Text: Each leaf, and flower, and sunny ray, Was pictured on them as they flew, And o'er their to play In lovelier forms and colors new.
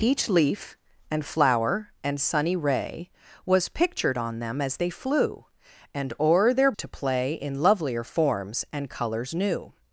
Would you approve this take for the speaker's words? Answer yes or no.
yes